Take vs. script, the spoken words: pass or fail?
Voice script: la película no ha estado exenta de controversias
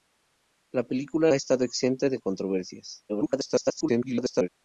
fail